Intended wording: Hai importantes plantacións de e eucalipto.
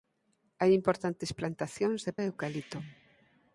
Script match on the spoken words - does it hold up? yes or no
yes